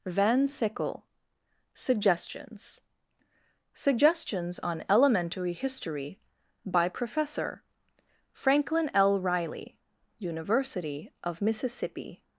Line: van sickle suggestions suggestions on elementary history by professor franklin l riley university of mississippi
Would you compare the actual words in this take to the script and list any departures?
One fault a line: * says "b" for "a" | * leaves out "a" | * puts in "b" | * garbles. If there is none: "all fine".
all fine